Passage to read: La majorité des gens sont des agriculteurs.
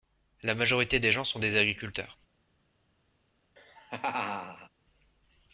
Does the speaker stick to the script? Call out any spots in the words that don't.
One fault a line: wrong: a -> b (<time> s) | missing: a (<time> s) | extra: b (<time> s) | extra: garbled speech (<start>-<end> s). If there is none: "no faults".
no faults